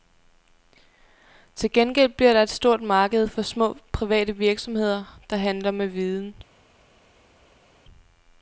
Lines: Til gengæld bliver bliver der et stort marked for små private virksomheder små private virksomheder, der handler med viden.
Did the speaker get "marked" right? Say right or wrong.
right